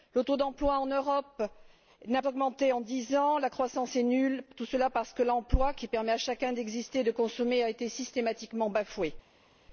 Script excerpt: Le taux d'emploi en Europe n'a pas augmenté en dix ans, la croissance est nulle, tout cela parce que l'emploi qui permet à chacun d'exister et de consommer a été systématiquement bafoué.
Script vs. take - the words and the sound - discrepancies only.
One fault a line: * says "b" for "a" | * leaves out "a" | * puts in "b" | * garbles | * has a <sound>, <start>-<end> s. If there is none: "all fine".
* leaves out "pas"